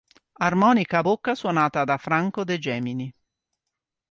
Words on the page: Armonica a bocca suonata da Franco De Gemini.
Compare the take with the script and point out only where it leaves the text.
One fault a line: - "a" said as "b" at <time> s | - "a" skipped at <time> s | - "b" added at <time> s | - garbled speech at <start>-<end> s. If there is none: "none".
none